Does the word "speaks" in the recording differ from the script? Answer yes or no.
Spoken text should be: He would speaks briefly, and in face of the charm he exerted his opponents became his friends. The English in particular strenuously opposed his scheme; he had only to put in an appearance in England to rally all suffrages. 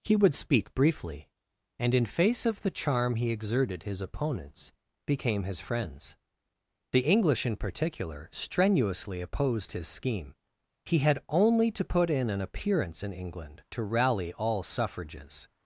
yes